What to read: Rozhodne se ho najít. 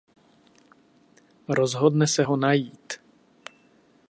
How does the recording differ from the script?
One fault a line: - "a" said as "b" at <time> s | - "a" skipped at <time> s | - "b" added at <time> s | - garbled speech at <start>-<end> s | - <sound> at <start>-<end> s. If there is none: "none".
none